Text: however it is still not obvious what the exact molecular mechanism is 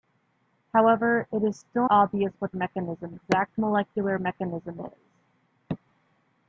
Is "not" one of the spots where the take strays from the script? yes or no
yes